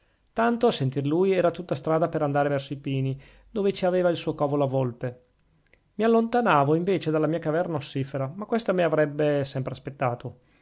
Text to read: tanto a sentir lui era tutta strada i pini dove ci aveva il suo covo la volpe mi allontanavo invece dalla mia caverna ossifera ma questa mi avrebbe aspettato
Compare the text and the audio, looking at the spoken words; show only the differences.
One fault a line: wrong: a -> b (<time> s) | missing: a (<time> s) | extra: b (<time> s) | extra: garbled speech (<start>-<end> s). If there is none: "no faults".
extra: per andare verso (2.1 s)
extra: sempre (9.4 s)